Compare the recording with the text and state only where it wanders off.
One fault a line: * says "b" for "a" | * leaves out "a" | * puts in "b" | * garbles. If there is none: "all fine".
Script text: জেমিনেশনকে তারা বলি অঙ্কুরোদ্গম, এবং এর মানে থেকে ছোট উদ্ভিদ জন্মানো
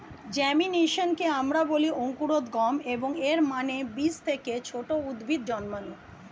* says "আমরা" for "তারা"
* puts in "বীজ"